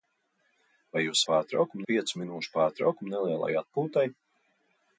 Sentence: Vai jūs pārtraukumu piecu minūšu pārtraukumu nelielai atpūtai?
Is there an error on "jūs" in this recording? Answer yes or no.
no